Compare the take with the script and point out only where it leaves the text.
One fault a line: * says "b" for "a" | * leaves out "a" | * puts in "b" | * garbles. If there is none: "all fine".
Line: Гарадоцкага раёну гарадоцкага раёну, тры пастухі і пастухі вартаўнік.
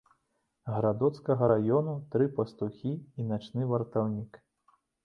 * leaves out "гарадоцкага раёну"
* says "начны" for "пастухі"